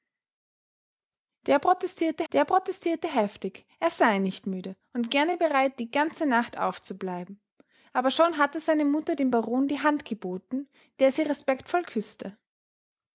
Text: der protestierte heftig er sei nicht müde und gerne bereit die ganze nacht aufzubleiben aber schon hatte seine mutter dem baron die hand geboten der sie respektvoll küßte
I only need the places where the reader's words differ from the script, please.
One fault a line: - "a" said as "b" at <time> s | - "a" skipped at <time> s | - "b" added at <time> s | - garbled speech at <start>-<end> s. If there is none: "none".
- "der protestierte" added at 2.3 s